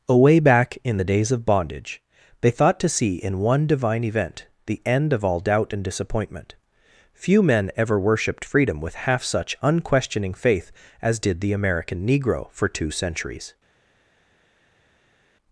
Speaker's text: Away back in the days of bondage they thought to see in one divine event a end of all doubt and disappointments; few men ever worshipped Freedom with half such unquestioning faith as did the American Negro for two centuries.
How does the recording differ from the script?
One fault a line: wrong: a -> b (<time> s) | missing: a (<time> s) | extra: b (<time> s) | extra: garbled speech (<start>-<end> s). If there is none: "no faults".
wrong: a -> the (4.6 s)
wrong: disappointments -> disappointment (5.8 s)